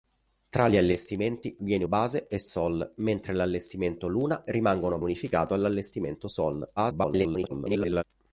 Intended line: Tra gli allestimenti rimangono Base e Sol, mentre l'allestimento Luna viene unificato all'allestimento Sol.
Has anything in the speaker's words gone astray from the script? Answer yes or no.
yes